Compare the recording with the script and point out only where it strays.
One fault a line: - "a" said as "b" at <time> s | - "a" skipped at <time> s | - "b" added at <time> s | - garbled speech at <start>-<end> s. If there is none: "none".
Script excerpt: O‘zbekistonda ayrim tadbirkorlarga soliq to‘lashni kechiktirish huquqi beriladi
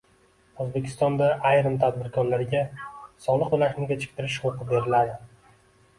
none